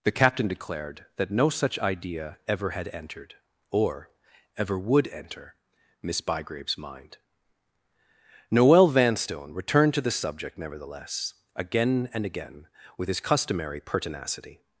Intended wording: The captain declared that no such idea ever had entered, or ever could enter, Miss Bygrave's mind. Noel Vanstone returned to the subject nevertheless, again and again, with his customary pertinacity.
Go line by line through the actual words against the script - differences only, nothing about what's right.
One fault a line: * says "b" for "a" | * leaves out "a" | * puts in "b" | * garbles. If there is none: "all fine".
* says "would" for "could"